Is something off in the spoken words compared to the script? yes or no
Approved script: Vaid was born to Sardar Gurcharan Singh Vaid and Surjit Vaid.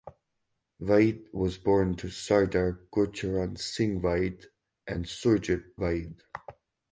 no